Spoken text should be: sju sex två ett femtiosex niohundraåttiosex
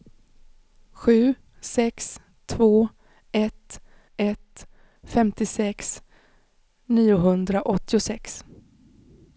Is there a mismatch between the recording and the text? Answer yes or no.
yes